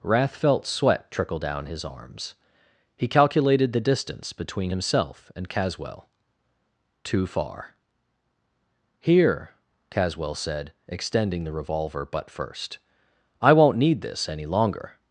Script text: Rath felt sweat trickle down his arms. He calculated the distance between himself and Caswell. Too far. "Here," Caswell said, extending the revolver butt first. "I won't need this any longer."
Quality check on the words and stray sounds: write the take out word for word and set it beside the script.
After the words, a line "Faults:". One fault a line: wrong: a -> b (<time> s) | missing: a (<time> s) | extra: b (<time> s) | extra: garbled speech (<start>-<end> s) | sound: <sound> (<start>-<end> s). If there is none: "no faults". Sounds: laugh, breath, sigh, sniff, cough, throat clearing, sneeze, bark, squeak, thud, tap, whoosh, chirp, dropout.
Rath felt sweat trickle down his arms. He calculated the distance between himself and Caswell. Too far. "Here," Caswell said, extending the revolver butt first. "I won't need this any longer."
Faults:
no faults